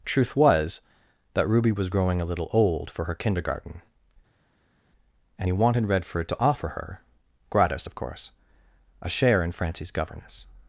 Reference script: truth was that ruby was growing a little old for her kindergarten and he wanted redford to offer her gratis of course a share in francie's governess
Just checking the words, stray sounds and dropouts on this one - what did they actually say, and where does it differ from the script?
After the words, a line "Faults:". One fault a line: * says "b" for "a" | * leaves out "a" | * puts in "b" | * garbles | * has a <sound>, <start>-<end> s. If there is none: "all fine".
truth was that ruby was growing a little old for her kindergarten and he wanted redford to offer her gratis of course a share in francie's governess
Faults:
all fine